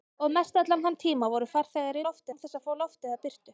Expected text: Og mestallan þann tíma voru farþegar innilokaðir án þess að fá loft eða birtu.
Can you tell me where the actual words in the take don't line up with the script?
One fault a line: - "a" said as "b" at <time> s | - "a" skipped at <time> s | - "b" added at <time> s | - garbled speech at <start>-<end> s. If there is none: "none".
- "innilokaðir" said as "loft" at 2.1 s